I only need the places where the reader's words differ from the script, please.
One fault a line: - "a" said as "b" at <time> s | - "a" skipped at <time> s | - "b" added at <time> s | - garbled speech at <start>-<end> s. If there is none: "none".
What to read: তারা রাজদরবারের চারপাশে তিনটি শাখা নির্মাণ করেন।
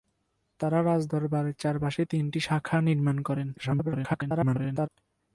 - garbled speech at 3.6-4.9 s